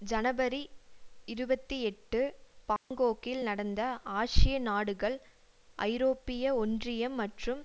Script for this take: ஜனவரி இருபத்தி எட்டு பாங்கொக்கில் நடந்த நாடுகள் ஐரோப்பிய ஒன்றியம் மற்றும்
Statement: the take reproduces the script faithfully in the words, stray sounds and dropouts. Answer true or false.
false